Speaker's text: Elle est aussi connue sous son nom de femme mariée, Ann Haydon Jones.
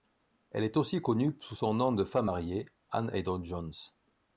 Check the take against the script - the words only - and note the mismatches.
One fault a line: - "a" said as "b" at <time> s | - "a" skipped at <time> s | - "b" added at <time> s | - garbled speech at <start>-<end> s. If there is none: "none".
none